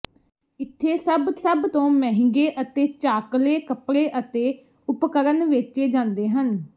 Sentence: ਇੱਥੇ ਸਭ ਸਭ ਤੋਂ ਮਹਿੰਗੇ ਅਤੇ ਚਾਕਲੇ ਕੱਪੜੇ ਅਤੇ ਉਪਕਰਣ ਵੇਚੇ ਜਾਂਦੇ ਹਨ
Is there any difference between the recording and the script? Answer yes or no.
no